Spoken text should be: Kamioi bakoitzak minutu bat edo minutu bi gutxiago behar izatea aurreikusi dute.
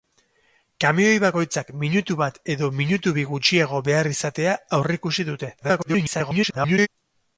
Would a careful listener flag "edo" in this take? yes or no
no